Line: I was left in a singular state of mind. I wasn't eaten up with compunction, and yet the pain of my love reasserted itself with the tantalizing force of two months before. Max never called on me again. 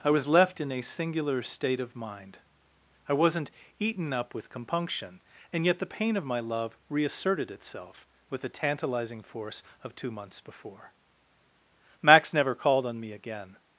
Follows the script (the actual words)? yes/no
yes